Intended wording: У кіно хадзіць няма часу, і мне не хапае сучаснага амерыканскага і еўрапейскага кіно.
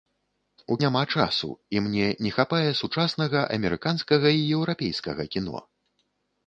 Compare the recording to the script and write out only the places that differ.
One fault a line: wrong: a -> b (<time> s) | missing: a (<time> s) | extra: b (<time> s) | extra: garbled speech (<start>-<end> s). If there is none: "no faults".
missing: кіно хадзіць (0.8 s)